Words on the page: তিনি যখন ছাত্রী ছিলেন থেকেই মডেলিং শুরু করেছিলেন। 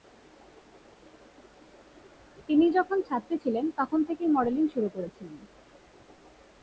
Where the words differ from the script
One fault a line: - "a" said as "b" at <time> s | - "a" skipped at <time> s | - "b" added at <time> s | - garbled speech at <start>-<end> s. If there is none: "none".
- "তখন" added at 3.8 s